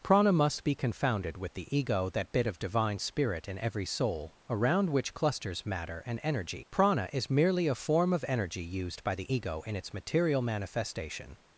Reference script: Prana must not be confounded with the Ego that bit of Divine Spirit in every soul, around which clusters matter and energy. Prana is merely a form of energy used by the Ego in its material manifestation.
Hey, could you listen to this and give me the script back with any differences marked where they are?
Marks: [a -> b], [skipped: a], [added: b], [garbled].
Prana must [skipped: not] be confounded with the Ego that bit of Divine Spirit in every soul, around which clusters matter and energy. Prana is merely a form of energy used by the Ego in its material manifestation.